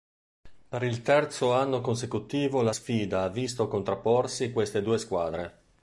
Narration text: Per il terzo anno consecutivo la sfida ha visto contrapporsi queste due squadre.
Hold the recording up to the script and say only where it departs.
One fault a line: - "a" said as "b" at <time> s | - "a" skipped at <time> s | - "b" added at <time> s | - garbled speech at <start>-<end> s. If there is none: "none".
none